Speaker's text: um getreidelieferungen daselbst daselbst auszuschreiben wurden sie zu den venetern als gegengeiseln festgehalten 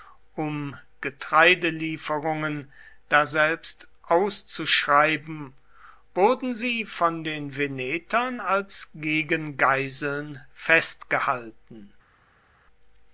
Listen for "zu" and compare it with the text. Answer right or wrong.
wrong